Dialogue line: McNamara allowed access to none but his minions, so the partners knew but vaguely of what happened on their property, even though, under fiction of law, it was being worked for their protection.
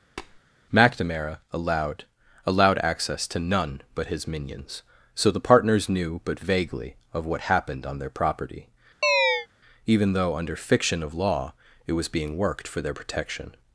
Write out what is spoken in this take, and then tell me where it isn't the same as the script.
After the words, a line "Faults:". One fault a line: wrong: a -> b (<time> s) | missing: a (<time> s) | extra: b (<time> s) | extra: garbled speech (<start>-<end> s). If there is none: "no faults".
McNamara allowed allowed access to none but his minions, so the partners knew but vaguely of what happened on their property, even though, under fiction of law, it was being worked for their protection.
Faults:
extra: allowed (2.4 s)